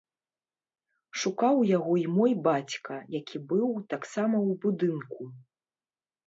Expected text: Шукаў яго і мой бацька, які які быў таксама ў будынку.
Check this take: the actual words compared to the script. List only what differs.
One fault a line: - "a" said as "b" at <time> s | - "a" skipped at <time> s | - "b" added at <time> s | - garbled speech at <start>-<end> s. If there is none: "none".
- "які" skipped at 3.4 s